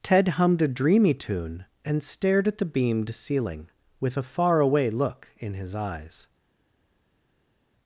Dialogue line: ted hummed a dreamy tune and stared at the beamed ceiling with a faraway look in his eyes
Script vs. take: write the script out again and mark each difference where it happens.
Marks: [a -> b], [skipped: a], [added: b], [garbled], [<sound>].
ted hummed a dreamy tune and stared at the beamed ceiling with a faraway look in his eyes